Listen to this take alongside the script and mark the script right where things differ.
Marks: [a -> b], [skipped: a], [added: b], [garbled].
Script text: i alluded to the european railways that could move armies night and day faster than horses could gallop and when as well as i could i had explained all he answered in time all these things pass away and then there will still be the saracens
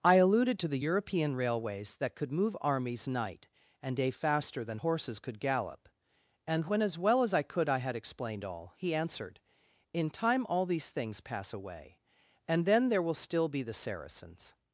i alluded to the european railways that could move armies night and day faster than horses could gallop and when as well as i could i had explained all he answered in time all these things pass away and then there will still be the saracens